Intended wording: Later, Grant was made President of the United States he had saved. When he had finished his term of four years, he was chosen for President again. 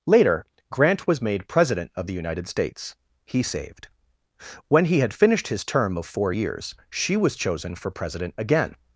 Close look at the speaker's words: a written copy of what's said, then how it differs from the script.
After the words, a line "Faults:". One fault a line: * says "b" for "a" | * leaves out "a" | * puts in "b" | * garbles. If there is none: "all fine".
Later, Grant was made President of the United States he saved. When he had finished his term of four years, she was chosen for President again.
Faults:
* leaves out "had"
* says "she" for "he"